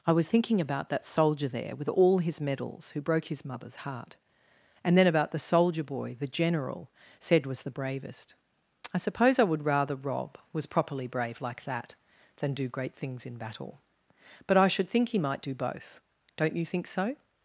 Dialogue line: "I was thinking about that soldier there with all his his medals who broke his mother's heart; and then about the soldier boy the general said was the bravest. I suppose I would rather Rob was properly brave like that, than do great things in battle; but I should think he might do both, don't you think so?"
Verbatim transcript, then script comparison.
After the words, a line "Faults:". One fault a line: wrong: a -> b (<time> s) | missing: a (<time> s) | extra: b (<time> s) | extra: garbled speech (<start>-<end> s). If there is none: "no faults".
"I was thinking about that soldier there with all his medals who broke his mother's heart; and then about the soldier boy the general said was the bravest. I suppose I would rather Rob was properly brave like that, than do great things in battle; but I should think he might do both, don't you think so?"
Faults:
missing: his (2.4 s)